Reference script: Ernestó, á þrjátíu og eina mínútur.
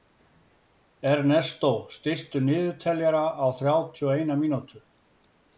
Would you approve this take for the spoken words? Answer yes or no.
no